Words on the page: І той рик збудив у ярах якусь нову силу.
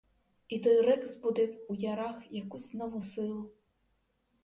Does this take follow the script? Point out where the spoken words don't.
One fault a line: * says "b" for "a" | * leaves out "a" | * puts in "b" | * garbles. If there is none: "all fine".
all fine